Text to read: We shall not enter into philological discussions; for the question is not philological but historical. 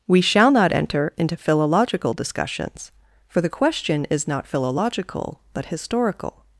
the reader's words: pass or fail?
pass